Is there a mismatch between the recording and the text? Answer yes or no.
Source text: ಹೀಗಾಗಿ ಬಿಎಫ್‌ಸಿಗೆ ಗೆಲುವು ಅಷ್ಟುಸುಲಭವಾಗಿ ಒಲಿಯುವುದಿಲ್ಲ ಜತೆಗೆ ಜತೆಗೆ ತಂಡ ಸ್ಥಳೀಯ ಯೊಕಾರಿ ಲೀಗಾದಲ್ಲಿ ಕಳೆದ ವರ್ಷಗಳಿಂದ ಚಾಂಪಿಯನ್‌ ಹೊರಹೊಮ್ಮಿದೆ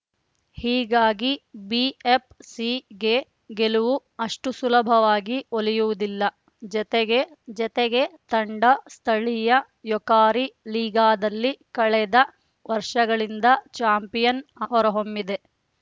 no